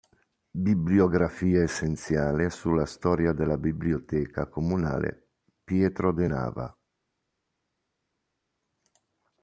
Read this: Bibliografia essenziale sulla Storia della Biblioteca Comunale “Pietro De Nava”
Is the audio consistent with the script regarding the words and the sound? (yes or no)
yes